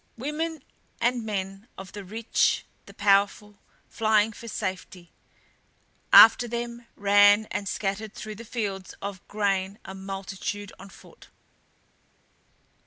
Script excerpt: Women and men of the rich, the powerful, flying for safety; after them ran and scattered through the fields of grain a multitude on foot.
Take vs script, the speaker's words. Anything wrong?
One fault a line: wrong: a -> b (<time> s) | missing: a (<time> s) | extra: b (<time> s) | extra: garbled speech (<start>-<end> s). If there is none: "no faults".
no faults